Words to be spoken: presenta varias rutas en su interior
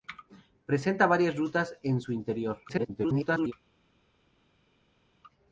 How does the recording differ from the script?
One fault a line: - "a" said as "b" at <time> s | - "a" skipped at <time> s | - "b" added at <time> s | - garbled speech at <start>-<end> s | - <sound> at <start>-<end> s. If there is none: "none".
- garbled speech at 2.7-3.5 s